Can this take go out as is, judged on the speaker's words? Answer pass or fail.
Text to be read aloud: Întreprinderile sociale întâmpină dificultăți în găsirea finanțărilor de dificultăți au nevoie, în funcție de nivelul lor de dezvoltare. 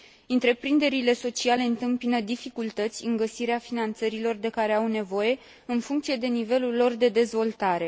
fail